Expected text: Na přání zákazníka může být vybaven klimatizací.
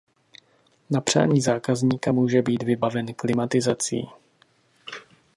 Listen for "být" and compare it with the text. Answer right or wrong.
right